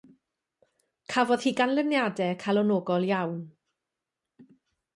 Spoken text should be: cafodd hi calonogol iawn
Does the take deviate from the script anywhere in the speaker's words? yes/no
yes